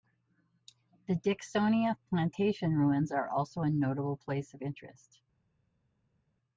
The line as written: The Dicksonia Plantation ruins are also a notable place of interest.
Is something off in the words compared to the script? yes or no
no